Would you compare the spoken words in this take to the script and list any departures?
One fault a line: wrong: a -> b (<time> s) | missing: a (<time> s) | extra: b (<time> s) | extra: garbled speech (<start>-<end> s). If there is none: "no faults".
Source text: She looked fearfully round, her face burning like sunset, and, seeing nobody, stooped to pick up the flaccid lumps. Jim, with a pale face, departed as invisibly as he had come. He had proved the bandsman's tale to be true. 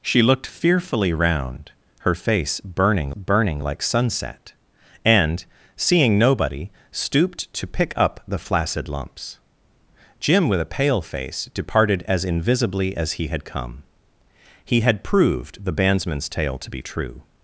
extra: burning (3.1 s)